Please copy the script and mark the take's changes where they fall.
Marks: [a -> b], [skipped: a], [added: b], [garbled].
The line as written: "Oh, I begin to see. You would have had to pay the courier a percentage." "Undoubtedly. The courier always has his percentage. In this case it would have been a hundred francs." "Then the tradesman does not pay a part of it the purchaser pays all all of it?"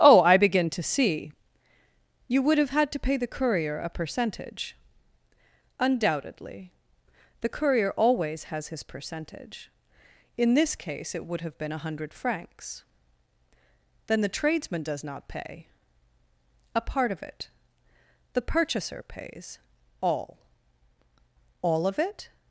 "Oh, I begin to see. You would have had to pay the courier a percentage." "Undoubtedly. The courier always has his percentage. In this case it would have been a hundred francs." "Then the tradesman does not pay a part of it the purchaser pays all all of it?"